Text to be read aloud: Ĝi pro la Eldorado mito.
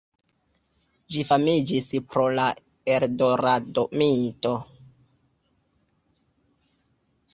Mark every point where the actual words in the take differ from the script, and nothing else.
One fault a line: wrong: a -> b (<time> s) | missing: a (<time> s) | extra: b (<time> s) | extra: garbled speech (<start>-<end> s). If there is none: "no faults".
extra: famiĝis (1.3 s)